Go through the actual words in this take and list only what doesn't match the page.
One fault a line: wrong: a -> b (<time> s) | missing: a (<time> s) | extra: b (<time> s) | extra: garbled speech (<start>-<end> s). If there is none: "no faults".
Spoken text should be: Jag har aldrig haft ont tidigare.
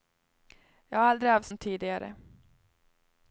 no faults